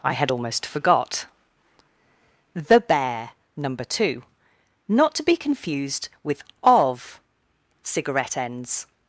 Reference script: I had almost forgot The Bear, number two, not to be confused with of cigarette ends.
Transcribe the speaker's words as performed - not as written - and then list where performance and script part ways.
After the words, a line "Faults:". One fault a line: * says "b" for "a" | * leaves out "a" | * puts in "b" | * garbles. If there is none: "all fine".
I had almost forgot The Bear, number two, not to be confused with of cigarette ends.
Faults:
all fine